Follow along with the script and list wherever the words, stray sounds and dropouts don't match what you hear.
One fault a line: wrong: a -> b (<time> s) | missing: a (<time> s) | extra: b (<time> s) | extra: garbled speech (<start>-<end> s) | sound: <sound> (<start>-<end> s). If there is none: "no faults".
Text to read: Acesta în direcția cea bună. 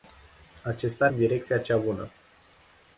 no faults